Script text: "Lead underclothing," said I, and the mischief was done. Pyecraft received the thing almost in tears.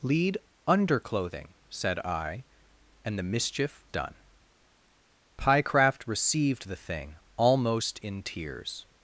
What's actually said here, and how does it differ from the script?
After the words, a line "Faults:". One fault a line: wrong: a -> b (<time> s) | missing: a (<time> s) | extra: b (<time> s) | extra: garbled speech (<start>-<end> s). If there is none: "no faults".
"Lead underclothing," said I, and the mischief done. Pyecraft received the thing almost in tears.
Faults:
missing: was (3.8 s)